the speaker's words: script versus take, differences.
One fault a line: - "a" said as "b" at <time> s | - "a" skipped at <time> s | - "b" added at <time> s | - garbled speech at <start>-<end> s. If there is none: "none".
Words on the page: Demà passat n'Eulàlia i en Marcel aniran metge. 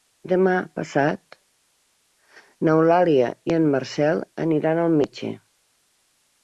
- "al" added at 4.9 s